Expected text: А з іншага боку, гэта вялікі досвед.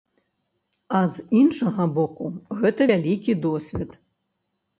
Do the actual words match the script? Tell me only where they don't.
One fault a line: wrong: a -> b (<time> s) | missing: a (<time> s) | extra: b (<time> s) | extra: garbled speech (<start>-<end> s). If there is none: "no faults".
no faults